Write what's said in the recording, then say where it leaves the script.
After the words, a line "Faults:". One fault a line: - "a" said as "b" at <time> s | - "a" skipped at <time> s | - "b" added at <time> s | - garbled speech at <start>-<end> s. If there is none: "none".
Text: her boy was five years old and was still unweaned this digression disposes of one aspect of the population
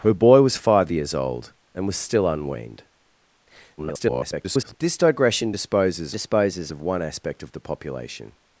her boy was five years old and was still unweaned [garbled] this digression disposes disposes of one aspect of the population
Faults:
- garbled speech at 3.8-4.7 s
- "disposes" added at 6.1 s